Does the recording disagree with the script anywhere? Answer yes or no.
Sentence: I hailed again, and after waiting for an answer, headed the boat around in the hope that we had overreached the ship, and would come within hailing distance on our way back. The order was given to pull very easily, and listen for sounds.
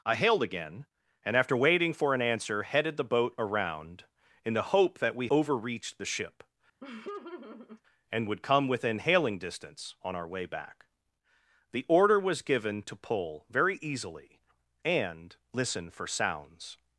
yes